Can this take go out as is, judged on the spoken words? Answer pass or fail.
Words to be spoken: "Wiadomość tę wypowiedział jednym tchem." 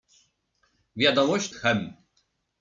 fail